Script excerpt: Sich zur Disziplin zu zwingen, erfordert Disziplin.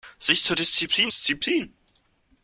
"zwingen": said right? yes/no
no